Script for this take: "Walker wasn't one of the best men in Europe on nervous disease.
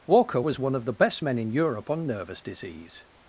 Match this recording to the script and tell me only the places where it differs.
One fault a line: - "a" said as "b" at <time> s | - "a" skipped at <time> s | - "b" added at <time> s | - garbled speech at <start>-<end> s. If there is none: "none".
- "wasn't" said as "was" at 0.4 s